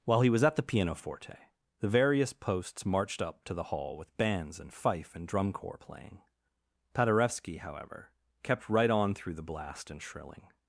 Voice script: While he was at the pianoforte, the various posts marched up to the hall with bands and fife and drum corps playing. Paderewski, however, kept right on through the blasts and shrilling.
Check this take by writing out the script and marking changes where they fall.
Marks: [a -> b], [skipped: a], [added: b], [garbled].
While he was at the pianoforte, the various posts marched up to the hall with bands and fife and drum corps playing. Paderewski, however, kept right on through the [blasts -> blast] and shrilling.